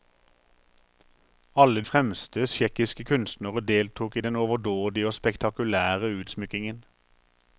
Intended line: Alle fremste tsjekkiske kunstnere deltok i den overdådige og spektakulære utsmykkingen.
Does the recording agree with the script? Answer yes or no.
yes